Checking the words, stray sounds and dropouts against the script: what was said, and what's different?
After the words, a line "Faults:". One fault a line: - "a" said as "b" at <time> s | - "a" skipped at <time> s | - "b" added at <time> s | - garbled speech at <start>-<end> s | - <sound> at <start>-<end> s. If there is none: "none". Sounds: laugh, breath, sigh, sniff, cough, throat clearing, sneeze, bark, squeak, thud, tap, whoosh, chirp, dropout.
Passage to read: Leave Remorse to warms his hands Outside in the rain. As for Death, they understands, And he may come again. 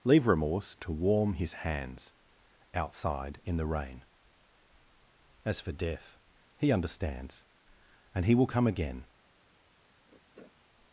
Leave Remorse to warm his hands Outside in the rain. As for Death, he understands, And he will come again.
Faults:
- "warms" said as "warm" at 0.9 s
- "they" said as "he" at 6.6 s
- "may" said as "will" at 8.3 s
- sniff at 10.1-10.6 s